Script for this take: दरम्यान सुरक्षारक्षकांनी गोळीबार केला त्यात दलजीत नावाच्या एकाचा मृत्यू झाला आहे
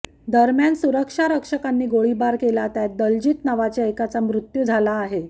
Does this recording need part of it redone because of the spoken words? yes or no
no